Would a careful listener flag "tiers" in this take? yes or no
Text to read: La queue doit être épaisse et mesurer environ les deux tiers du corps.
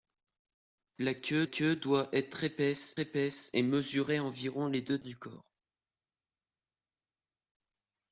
yes